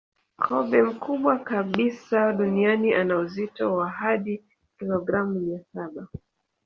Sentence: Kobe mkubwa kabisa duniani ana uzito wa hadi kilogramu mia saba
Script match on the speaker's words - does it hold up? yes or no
yes